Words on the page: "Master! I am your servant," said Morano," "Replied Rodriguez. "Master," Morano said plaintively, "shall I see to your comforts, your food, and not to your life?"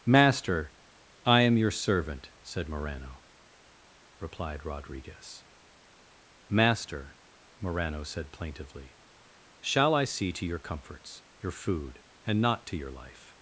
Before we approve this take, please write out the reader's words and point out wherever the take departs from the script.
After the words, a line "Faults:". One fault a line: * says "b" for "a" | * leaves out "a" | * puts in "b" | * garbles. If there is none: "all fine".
"Master! I am your servant," said Morano," "Replied Rodriguez. "Master," Morano said plaintively, "shall I see to your comforts, your food, and not to your life?"
Faults:
all fine